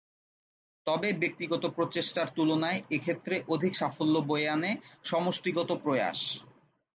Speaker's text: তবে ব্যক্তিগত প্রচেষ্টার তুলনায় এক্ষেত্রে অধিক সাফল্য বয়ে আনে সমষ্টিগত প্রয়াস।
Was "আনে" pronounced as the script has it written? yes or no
yes